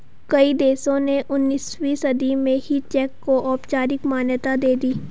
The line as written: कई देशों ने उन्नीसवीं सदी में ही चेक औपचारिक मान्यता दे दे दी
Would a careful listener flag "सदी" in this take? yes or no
no